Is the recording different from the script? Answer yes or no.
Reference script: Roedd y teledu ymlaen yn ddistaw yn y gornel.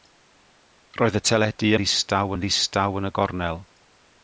yes